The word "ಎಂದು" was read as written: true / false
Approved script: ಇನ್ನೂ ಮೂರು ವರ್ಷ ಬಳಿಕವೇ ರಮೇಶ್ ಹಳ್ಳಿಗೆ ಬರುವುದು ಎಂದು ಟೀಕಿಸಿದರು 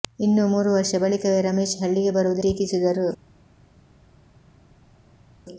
false